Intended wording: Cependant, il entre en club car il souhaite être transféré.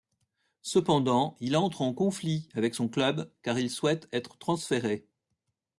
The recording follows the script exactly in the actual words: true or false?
false